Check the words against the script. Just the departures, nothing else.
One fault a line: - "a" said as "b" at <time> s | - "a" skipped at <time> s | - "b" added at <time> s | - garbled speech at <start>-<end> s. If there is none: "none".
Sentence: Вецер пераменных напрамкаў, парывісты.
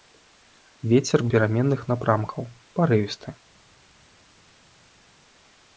none